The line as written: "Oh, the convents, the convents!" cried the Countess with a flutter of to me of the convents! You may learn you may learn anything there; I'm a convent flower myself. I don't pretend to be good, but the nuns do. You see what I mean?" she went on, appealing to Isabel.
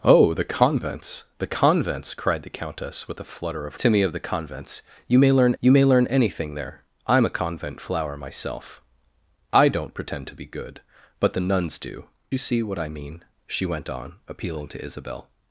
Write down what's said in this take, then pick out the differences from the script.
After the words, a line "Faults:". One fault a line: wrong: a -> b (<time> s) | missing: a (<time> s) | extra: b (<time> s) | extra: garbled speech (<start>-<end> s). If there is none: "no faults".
"Oh, the convents, the convents!" cried the Countess with a flutter of to me of the convents! You may learn you may learn anything there; I'm a convent flower myself. I don't pretend to be good, but the nuns do. You see what I mean?" she went on, appealing to Isabel.
Faults:
no faults